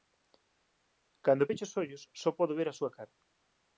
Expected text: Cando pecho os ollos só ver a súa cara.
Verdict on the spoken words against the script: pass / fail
fail